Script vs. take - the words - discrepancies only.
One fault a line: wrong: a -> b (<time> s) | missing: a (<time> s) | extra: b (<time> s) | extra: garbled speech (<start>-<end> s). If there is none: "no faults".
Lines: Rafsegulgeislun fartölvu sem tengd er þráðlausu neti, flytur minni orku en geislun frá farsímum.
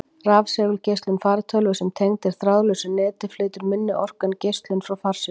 no faults